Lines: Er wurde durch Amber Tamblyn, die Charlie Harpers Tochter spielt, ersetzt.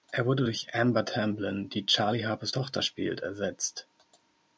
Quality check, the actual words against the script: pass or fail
pass